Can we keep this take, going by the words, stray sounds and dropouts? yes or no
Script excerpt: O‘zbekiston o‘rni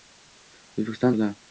yes